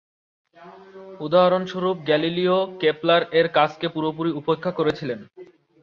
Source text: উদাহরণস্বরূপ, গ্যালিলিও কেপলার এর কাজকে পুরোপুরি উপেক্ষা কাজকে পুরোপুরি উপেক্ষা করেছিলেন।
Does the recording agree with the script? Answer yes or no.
no